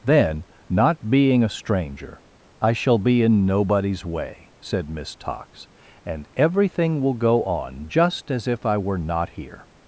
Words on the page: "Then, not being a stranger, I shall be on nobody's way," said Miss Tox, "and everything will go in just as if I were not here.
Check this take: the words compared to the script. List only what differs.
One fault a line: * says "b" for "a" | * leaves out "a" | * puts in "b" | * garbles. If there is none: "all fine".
* says "in" for "on"
* says "on" for "in"